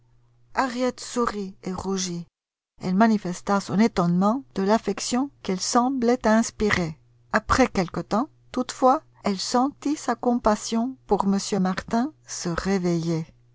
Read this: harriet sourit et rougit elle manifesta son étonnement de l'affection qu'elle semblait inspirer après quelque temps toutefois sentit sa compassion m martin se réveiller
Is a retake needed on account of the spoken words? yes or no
yes